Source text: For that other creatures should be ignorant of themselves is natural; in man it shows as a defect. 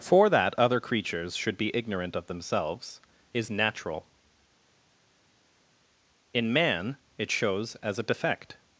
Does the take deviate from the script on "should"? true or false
false